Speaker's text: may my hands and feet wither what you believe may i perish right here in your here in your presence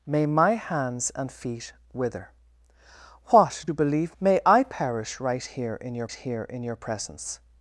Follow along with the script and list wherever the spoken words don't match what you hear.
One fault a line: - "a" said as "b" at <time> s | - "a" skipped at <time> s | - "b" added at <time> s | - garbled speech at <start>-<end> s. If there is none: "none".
none